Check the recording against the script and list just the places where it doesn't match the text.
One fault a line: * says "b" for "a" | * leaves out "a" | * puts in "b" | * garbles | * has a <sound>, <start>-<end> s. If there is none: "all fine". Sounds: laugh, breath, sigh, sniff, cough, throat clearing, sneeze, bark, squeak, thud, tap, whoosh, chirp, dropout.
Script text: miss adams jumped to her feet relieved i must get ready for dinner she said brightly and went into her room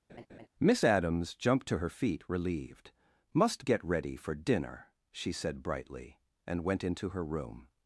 * has a laugh, 0.1-0.5 s
* leaves out "i"